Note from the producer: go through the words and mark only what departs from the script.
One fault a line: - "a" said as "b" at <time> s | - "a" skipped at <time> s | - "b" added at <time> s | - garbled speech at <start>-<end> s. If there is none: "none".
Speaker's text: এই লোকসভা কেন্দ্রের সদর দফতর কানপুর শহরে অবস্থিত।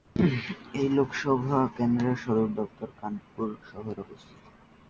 none